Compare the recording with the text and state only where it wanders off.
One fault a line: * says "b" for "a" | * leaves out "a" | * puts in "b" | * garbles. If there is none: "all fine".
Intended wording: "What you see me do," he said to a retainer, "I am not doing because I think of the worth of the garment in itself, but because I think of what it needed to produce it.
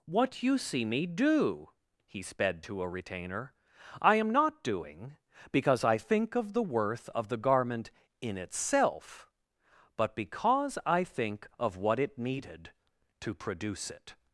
* says "sped" for "said"